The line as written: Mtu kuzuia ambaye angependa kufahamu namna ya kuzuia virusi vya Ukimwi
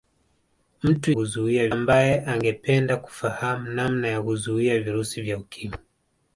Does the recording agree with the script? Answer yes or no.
yes